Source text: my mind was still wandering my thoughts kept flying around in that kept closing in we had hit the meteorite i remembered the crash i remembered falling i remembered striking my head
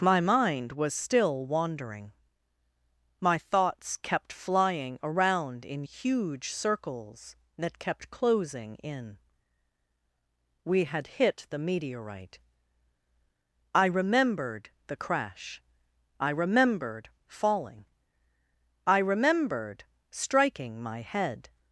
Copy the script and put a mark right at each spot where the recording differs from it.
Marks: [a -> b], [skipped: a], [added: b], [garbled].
my mind was still wandering my thoughts kept flying around in [added: huge circles] that kept closing in we had hit the meteorite i remembered the crash i remembered falling i remembered striking my head